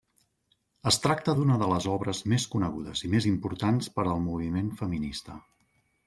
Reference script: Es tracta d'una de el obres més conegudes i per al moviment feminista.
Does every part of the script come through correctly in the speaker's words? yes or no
no